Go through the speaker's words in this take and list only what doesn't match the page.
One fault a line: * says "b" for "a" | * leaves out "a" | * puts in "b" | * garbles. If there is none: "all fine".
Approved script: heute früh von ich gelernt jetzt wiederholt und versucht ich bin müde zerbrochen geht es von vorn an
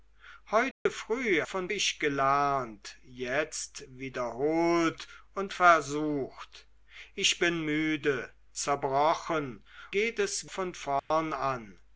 all fine